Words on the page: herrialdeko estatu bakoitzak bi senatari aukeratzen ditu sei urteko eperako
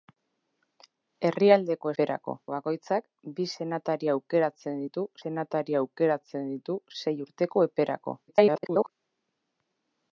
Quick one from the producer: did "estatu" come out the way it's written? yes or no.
no